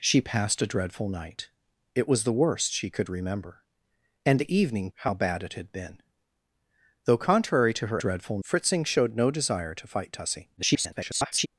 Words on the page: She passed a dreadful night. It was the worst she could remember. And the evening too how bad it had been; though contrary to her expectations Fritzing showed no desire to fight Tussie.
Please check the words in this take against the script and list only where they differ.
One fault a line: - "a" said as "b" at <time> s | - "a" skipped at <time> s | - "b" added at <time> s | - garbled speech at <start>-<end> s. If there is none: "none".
- "too" skipped at 4.9 s
- "expectations" said as "dreadful" at 8.0 s
- garbled speech at 10.6-11.5 s